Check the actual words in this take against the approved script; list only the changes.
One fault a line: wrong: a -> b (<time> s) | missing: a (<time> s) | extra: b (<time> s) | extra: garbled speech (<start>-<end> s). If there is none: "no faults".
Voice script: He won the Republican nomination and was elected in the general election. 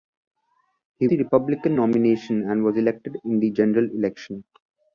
missing: won (1.1 s)